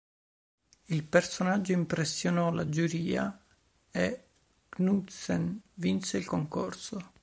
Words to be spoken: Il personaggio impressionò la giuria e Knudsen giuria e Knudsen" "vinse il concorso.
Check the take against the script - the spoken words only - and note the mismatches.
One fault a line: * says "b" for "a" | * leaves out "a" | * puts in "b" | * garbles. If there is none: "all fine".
* leaves out "giuria e Knudsen"